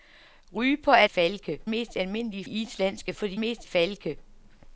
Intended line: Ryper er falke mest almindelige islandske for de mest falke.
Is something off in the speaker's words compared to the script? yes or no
no